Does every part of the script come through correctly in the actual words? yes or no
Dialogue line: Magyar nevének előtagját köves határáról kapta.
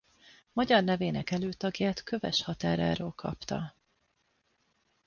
yes